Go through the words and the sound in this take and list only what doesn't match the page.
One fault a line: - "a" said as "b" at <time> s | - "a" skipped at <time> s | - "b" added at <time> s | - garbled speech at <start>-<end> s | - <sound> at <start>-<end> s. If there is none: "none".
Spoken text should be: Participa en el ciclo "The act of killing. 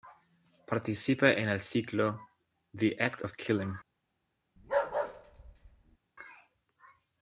- bark at 4.6-6.0 s